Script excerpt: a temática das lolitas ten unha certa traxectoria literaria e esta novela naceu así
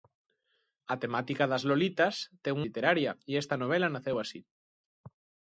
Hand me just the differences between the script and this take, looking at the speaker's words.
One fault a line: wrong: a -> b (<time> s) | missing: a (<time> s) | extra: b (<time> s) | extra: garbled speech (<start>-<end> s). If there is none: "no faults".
missing: unha certa traxectoria (2.5 s)